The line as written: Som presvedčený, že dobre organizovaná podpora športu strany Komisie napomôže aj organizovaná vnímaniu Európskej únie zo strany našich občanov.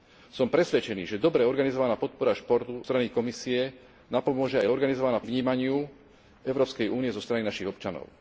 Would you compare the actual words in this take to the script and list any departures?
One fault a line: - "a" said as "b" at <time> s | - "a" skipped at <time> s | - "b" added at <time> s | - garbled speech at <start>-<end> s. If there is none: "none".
none